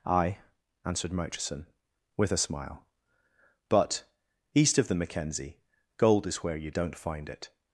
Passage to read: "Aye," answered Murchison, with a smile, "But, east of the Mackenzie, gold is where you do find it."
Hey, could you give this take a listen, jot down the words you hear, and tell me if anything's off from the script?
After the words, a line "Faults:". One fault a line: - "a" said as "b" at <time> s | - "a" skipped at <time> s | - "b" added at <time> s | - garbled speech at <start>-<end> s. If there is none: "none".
"Aye," answered Murchison, with a smile, "But, east of the Mackenzie, gold is where you don't find it."
Faults:
- "do" said as "don't" at 6.7 s